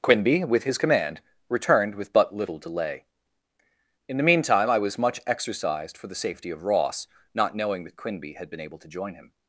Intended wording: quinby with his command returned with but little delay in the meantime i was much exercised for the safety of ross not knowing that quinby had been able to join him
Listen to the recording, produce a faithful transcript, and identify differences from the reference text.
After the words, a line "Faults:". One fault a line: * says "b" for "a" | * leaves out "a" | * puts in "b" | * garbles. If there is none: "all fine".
quinby with his command returned with but little delay in the meantime i was much exercised for the safety of ross not knowing that quinby had been able to join him
Faults:
all fine